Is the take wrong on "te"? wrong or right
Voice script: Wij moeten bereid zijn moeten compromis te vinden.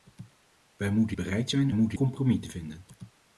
right